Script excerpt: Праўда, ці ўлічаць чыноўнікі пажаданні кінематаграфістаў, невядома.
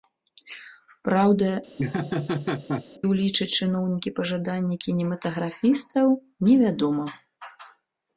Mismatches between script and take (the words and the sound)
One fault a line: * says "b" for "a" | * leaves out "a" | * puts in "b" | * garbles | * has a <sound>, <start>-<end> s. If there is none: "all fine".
* leaves out "ці"
* has a laugh, 1.8-2.8 s